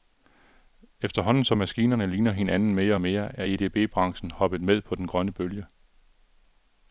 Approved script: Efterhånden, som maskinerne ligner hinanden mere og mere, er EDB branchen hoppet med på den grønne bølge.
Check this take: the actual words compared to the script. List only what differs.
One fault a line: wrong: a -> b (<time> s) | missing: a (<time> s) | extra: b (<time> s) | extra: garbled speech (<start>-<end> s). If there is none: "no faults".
no faults